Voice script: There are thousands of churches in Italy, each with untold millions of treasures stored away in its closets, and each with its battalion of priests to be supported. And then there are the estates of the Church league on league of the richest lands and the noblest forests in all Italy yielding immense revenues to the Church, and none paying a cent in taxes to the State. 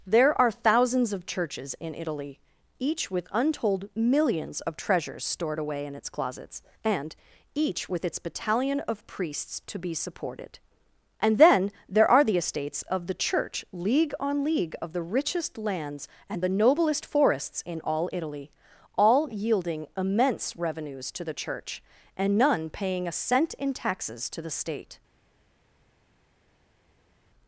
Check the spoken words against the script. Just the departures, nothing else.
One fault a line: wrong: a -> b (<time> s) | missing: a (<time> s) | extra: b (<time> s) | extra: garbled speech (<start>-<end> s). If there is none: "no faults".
extra: all (19.0 s)